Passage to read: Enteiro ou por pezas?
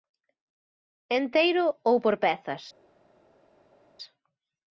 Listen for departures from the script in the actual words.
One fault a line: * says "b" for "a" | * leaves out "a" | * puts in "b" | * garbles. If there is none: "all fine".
all fine